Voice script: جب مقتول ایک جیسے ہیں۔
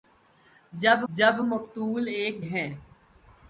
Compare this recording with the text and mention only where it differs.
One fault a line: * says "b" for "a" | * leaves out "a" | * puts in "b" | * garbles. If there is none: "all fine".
* puts in "جب"
* leaves out "جیسے"